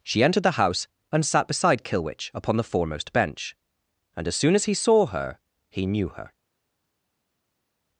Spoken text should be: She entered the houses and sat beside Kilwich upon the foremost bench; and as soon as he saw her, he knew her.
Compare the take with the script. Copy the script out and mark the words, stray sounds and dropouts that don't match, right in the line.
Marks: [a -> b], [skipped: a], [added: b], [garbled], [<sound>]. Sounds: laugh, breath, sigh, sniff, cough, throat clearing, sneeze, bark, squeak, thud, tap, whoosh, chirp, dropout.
She entered the [houses -> house] and sat beside Kilwich upon the foremost bench; and as soon as he saw her, he knew her.